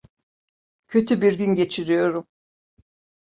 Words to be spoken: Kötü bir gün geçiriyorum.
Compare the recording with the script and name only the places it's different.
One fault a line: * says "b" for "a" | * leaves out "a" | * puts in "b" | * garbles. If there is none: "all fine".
all fine